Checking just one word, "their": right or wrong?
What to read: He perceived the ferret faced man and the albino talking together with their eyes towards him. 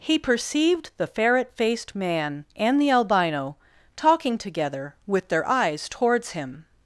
right